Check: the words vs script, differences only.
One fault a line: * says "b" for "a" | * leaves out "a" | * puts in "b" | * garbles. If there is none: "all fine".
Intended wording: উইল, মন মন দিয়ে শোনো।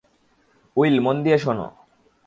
* leaves out "মন"